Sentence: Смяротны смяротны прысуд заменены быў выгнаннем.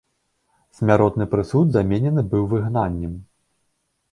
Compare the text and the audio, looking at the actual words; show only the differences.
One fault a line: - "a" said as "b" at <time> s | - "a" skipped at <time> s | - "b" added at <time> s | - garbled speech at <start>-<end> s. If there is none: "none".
- "смяротны" skipped at 1.3 s